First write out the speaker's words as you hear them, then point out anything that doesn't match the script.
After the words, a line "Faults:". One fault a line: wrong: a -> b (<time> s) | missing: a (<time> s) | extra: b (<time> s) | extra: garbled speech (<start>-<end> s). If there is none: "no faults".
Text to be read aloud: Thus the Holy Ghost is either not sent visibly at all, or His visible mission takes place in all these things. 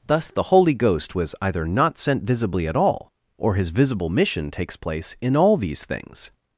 Thus the Holy Ghost was either not sent visibly at all, or His visible mission takes place in all these things.
Faults:
wrong: is -> was (1.1 s)